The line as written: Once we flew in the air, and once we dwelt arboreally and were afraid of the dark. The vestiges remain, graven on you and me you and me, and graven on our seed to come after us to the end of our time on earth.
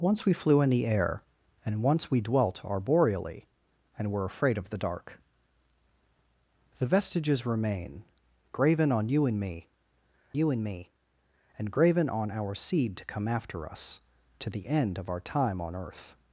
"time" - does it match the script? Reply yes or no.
yes